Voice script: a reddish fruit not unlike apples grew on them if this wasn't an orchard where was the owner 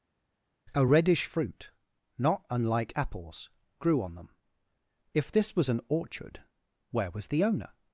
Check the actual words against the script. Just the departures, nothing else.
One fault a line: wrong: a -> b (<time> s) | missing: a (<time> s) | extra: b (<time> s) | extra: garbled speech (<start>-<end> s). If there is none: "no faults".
wrong: wasn't -> was (5.5 s)